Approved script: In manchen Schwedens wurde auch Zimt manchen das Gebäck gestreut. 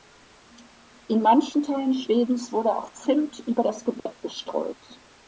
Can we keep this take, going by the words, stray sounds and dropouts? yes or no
no